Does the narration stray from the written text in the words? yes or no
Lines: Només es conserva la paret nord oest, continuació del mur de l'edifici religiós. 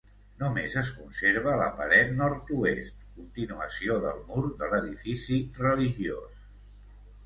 no